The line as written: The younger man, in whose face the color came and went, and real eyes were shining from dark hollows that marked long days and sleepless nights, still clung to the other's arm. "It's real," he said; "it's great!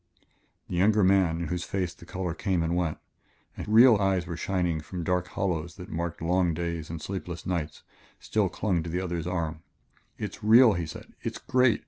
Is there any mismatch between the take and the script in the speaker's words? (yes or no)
no